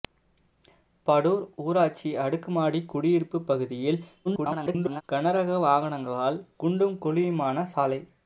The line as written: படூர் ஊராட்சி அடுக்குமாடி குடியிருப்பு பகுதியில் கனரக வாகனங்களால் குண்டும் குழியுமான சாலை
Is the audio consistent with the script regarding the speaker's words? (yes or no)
no